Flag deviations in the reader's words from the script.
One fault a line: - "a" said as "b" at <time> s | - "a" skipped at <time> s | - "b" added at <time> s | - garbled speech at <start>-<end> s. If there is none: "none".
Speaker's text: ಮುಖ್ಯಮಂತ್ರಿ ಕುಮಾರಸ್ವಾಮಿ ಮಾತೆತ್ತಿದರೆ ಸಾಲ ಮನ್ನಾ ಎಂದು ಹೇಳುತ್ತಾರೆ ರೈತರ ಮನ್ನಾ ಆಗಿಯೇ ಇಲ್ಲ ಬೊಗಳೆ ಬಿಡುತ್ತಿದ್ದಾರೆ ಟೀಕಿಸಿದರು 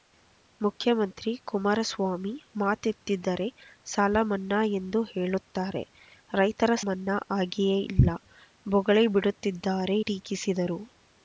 none